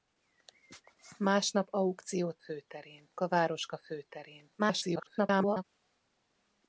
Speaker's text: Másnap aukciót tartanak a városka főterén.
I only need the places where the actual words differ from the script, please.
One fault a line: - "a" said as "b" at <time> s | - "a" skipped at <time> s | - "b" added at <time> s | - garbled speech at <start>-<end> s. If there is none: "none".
- "tartanak" said as "főterén" at 2.4 s
- garbled speech at 4.6-5.6 s